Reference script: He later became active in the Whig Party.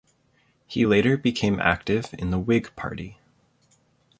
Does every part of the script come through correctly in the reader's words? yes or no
yes